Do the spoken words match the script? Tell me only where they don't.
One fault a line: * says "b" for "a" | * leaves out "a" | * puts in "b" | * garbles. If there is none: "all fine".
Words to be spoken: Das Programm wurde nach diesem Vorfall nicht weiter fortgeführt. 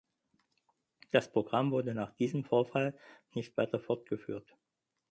all fine